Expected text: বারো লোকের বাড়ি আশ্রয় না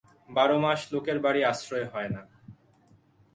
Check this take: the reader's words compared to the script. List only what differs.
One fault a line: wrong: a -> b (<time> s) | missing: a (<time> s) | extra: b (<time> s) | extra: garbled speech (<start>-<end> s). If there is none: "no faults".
extra: মাস (0.6 s)
extra: হয় (1.9 s)